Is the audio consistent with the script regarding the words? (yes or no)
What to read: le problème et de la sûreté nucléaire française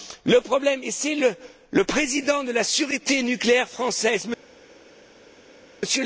no